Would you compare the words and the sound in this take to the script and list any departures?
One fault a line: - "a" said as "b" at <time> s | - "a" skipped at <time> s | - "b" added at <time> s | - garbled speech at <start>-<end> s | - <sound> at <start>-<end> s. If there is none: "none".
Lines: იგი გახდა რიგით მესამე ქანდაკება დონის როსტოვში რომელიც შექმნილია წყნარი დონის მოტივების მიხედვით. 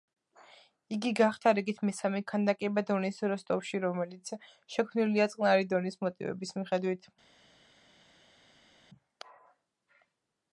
none